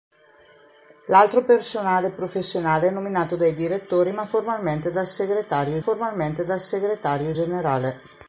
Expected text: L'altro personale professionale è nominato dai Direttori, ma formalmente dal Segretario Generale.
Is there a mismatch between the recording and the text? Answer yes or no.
yes